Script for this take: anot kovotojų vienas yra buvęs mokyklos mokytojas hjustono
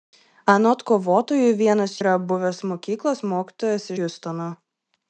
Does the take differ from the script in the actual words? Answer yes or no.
no